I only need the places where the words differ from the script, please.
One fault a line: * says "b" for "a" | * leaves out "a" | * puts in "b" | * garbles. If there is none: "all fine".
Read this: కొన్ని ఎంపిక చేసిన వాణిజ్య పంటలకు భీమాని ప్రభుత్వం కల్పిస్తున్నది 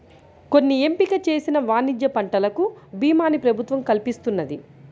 all fine